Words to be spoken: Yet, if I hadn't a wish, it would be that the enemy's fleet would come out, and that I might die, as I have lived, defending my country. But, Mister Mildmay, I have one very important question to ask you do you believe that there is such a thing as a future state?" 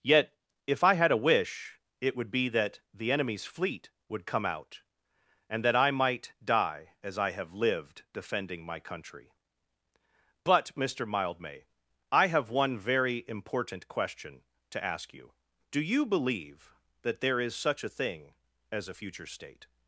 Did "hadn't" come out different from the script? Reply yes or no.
yes